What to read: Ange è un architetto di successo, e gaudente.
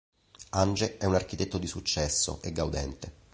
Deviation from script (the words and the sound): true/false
false